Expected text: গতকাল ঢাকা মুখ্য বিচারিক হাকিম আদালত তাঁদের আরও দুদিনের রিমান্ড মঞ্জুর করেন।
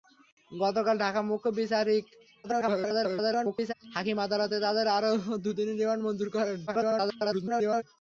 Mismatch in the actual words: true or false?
true